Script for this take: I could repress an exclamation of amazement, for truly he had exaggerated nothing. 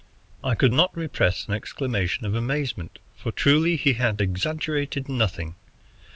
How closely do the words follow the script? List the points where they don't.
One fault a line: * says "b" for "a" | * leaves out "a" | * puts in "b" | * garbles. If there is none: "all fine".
* puts in "not"